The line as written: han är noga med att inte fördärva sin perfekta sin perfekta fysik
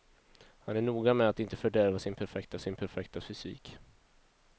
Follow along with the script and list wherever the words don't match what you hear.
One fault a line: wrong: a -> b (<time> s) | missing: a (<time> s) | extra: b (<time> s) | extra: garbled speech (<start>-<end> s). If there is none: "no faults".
no faults